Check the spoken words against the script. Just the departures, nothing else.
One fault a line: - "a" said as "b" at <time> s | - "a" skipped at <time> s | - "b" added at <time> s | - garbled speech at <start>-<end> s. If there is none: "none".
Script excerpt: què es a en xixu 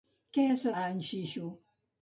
none